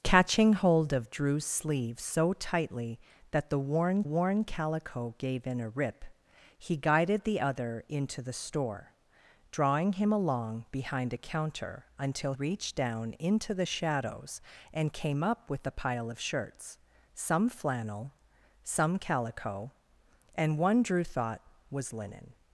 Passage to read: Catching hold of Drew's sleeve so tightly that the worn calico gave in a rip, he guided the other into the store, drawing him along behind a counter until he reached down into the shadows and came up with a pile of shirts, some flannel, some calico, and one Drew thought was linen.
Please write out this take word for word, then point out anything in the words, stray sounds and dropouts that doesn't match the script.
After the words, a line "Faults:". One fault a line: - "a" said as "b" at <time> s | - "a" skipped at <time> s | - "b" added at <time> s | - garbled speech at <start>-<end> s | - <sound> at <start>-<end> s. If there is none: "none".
Catching hold of Drew's sleeve so tightly that the worn worn calico gave in a rip, he guided the other into the store, drawing him along behind a counter until reached down into the shadows and came up with a pile of shirts, some flannel, some calico, and one Drew thought was linen.
Faults:
- "worn" added at 4.0 s
- "he" skipped at 12.3 s